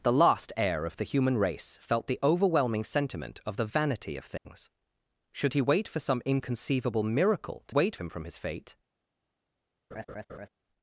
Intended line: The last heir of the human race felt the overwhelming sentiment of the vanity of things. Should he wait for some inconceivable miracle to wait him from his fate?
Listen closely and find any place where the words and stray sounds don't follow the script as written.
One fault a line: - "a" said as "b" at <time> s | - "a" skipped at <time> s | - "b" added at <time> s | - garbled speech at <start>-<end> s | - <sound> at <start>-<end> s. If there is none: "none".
- dropout at 4.4-4.5 s
- laugh at 9.9-10.5 s